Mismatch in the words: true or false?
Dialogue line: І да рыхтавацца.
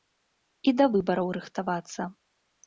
true